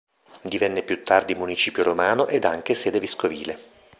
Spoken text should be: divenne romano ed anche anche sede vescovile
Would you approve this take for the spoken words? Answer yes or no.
no